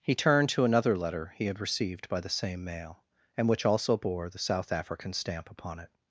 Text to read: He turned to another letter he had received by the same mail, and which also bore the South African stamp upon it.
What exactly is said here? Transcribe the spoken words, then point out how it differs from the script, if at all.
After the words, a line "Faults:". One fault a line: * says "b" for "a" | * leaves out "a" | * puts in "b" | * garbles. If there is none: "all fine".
He turned to another letter he had received by the same mail, and which also bore the South African stamp upon it.
Faults:
all fine